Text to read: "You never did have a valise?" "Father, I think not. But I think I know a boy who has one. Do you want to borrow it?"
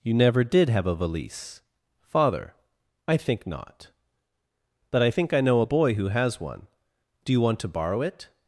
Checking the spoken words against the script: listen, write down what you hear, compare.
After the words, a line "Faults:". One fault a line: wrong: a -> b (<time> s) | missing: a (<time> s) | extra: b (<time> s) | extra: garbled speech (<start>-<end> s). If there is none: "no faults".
"You never did have a valise?" "Father, I think not. But I think I know a boy who has one. Do you want to borrow it?"
Faults:
no faults